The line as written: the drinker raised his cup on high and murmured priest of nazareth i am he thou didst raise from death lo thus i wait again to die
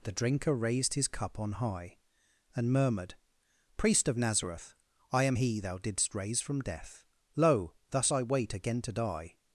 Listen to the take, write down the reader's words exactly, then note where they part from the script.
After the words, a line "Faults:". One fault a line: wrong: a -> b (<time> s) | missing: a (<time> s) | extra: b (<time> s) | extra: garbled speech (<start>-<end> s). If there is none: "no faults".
the drinker raised his cup on high and murmured priest of nazareth i am he thou didst raise from death lo thus i wait again to die
Faults:
no faults